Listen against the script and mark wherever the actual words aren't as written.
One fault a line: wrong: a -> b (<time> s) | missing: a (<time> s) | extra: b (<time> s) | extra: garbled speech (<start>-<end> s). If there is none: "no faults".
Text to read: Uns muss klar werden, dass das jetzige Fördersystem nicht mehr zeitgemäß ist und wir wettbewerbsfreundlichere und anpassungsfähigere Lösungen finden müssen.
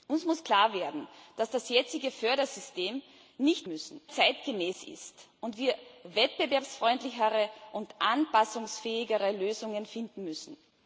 wrong: mehr -> müssen (3.7 s)